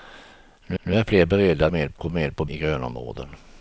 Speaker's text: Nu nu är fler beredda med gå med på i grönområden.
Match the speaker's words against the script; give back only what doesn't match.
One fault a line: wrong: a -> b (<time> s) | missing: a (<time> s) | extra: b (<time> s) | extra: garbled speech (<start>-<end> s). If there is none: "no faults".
no faults